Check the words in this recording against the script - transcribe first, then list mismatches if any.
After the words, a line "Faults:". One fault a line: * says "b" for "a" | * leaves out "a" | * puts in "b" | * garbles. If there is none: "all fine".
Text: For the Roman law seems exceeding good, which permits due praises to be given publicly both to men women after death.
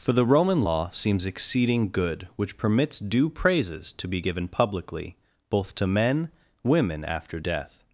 For the Roman law seems exceeding good, which permits due praises to be given publicly both to men women after death.
Faults:
all fine